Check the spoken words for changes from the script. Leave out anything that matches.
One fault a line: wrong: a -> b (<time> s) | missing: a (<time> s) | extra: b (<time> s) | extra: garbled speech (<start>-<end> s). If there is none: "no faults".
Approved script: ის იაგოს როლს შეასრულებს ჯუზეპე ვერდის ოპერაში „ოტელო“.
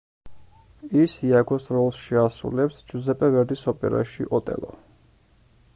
no faults